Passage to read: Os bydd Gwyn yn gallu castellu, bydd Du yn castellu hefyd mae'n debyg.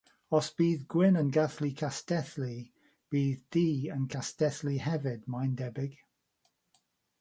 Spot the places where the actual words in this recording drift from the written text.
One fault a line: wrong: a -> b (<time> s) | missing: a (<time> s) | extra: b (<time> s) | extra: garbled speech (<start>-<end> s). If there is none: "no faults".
no faults